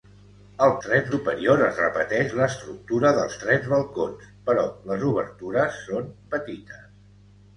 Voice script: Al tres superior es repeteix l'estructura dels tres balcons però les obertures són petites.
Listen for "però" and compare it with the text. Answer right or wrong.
right